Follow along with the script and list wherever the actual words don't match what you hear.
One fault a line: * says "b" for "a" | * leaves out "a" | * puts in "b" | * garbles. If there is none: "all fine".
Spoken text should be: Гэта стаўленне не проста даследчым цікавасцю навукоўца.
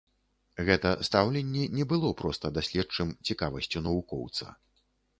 * puts in "было"